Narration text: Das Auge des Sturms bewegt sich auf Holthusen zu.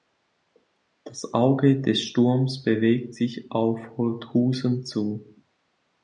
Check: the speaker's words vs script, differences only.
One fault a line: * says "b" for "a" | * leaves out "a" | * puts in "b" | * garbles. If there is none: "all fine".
all fine